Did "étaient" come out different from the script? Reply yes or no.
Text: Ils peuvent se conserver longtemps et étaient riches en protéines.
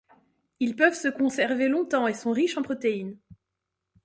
yes